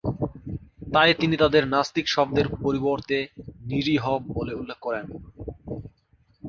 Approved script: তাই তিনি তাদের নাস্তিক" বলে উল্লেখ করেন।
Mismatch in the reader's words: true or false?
true